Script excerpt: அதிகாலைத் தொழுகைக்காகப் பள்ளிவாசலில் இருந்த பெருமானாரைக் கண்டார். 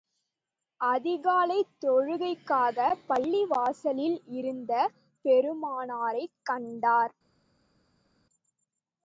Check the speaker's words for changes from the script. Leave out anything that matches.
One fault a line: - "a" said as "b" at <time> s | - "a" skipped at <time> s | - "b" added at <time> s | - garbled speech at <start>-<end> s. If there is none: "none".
none